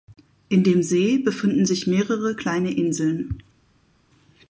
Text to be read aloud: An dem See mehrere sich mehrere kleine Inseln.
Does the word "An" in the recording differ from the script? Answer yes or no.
yes